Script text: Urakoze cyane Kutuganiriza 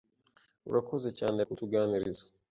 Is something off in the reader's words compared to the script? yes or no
no